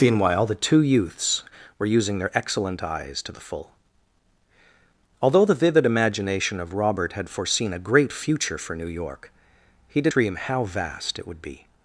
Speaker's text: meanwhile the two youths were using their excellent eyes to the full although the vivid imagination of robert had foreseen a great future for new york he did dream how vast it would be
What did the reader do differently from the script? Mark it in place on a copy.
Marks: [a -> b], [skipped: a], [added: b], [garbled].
meanwhile the two youths were using their excellent eyes to the full although the vivid imagination of robert had foreseen a great future for new york he did dream how vast it would be